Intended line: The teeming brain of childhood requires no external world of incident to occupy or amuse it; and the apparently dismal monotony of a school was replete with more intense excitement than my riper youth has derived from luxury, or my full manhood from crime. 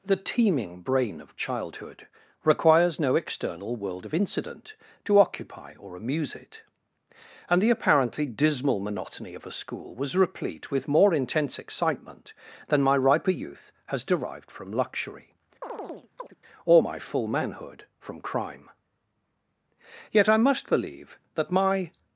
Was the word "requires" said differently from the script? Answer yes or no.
no